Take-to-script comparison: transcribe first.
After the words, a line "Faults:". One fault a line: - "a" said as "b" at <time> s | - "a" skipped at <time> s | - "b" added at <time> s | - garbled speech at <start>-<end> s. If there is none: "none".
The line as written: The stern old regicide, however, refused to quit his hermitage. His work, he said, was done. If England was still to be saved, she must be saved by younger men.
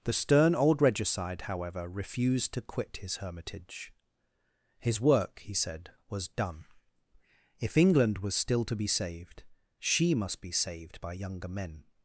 The stern old regicide, however, refused to quit his hermitage. His work, he said, was done. If England was still to be saved, she must be saved by younger men.
Faults:
none